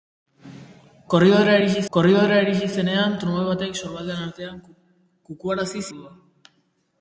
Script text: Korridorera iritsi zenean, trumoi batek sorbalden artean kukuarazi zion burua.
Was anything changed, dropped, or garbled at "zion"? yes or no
yes